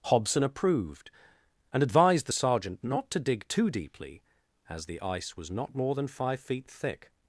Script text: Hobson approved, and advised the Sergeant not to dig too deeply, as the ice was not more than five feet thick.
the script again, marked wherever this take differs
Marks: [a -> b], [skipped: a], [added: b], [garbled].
Hobson approved, and advised the Sergeant not to dig too deeply, as the ice was not more than five feet thick.